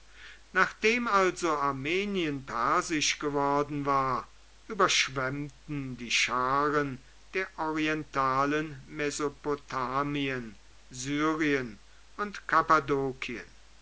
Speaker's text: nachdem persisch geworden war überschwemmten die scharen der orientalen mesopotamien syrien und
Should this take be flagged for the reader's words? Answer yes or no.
yes